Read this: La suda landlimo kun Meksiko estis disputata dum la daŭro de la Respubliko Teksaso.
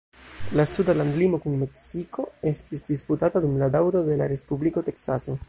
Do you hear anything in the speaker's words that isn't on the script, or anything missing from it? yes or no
no